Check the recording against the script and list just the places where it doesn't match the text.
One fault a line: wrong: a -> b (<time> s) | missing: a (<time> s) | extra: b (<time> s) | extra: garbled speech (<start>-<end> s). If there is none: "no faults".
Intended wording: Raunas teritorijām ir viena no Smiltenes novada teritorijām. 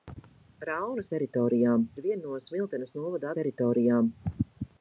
no faults